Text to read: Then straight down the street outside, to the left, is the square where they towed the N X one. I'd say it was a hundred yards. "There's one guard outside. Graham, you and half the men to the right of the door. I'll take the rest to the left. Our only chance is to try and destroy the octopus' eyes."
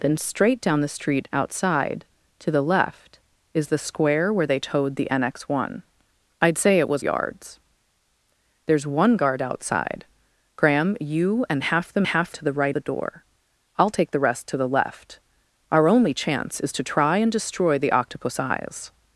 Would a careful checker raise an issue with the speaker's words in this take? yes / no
yes